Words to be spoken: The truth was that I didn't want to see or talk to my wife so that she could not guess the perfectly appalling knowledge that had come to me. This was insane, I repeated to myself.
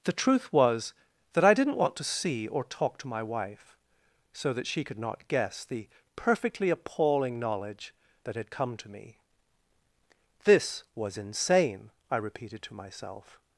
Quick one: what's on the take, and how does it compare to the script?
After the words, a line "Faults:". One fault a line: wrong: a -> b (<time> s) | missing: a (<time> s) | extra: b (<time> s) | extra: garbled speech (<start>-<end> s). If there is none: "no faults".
The truth was that I didn't want to see or talk to my wife so that she could not guess the perfectly appalling knowledge that had come to me. This was insane, I repeated to myself.
Faults:
no faults